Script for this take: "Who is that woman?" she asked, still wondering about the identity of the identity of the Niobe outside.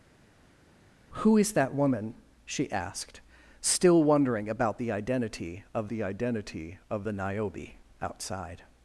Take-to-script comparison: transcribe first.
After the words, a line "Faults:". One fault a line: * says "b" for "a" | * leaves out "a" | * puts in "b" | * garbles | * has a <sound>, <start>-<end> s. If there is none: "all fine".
"Who is that woman?" she asked, still wondering about the identity of the identity of the Niobe outside.
Faults:
all fine